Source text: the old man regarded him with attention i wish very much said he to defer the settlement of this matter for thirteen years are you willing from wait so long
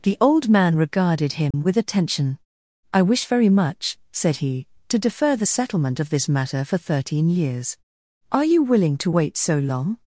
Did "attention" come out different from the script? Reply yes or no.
no